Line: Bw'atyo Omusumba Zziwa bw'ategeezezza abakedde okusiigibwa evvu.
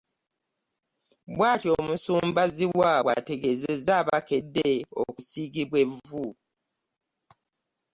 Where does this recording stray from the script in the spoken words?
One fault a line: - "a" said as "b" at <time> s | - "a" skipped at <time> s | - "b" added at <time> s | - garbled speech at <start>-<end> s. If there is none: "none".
none